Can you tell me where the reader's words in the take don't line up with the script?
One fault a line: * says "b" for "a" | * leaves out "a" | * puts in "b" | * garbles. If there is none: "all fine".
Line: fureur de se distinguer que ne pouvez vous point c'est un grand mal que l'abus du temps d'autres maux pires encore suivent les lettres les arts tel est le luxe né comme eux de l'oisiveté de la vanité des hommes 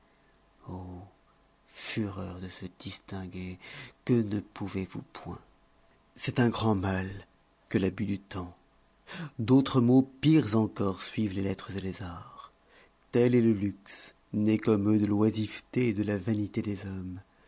all fine